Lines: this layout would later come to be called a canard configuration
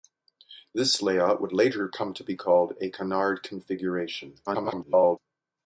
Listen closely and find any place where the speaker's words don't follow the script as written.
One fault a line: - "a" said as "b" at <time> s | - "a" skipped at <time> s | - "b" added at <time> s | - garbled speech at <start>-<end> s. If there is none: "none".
- garbled speech at 4.5-5.2 s